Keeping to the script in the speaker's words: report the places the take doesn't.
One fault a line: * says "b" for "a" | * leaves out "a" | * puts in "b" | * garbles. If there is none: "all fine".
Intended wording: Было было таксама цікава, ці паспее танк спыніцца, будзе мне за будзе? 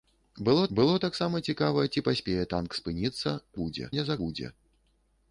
all fine